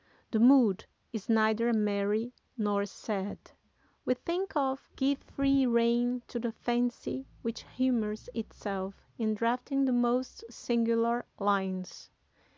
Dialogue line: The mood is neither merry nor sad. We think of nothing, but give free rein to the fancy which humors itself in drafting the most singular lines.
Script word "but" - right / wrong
wrong